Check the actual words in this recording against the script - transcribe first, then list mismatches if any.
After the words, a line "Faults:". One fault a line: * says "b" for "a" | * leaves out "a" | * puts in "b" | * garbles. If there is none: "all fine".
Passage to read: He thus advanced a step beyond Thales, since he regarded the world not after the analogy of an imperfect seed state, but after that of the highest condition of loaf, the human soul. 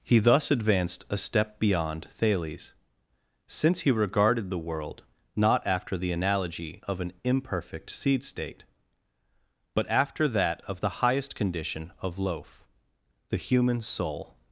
He thus advanced a step beyond Thales, since he regarded the world not after the analogy of an imperfect seed state, but after that of the highest condition of loaf, the human soul.
Faults:
all fine